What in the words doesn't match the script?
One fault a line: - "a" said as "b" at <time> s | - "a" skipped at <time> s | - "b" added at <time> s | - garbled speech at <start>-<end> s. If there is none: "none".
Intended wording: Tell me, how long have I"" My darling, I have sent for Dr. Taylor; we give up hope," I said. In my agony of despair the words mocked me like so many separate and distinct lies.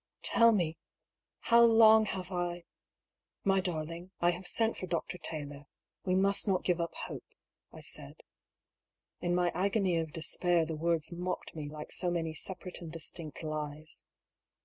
- "must not" added at 6.1 s